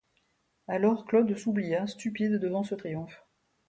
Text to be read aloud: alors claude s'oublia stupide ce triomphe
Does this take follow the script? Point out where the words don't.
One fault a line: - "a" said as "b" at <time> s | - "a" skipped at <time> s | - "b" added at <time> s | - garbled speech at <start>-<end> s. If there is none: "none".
- "devant" added at 2.3 s